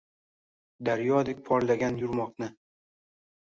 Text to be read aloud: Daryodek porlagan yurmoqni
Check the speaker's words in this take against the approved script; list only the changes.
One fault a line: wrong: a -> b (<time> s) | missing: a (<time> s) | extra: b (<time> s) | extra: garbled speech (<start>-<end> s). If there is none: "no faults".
no faults